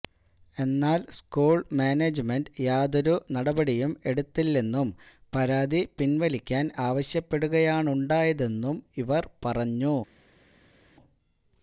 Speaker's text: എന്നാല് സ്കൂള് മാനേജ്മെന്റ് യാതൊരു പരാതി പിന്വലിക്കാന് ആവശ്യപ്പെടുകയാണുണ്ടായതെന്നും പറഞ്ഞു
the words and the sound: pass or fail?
fail